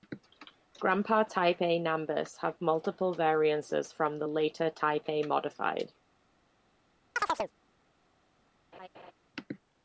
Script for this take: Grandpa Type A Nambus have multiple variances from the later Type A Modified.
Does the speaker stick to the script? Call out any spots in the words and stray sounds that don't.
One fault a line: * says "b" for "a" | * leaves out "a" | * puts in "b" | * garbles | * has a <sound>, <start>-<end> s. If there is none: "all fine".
* has a chirp, 7.2-7.5 s
* has a laugh, 8.7-9.1 s